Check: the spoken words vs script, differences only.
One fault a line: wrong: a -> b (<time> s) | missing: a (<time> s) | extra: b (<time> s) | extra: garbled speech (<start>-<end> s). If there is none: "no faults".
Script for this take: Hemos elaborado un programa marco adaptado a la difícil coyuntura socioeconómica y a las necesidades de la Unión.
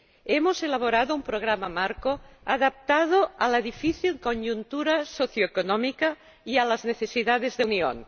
missing: la (7.7 s)